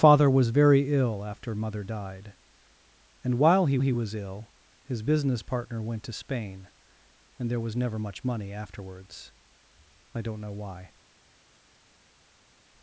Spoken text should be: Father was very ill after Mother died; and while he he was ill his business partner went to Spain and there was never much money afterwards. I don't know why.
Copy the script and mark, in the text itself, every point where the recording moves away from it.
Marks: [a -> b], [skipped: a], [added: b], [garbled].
Father was very ill after Mother died; and while he he was ill his business partner went to Spain and there was never much money afterwards. I don't know why.